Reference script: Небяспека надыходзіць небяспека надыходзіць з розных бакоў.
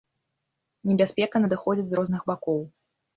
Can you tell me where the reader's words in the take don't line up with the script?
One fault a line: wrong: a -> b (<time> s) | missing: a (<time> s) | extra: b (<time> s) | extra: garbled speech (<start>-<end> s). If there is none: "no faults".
missing: небяспека надыходзіць (1.9 s)